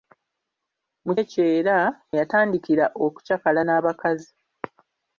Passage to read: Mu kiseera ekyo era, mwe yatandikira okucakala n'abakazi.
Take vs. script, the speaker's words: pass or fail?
fail